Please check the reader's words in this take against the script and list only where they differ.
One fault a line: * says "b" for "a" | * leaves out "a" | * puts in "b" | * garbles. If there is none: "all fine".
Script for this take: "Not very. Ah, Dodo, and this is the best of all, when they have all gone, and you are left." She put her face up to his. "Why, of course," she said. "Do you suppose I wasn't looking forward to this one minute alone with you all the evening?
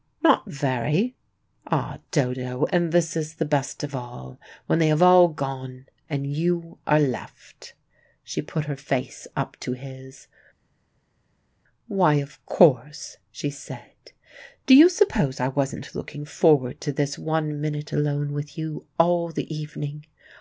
all fine